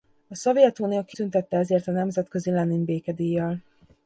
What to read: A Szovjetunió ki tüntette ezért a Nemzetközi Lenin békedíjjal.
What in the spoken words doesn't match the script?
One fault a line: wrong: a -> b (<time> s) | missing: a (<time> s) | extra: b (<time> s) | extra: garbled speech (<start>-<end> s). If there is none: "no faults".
no faults